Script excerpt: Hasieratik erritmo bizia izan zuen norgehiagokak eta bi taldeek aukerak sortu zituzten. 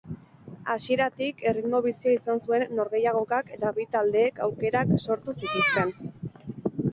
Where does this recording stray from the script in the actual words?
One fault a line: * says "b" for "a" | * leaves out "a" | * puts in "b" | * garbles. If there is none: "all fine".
all fine